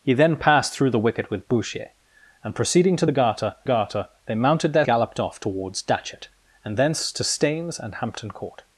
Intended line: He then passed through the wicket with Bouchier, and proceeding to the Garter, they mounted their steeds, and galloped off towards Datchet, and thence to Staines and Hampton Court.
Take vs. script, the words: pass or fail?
fail